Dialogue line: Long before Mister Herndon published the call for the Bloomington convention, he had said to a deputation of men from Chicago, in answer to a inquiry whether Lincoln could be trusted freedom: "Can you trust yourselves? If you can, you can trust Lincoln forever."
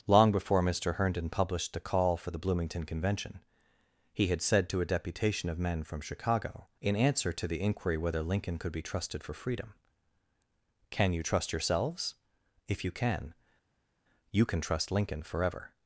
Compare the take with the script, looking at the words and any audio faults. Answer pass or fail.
fail